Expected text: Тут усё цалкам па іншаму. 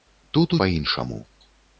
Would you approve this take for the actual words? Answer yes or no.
no